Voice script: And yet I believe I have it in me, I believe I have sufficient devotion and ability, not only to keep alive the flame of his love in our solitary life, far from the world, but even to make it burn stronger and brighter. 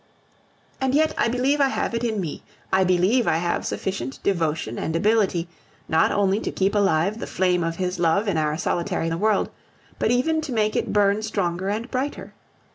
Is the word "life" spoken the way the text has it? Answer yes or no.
no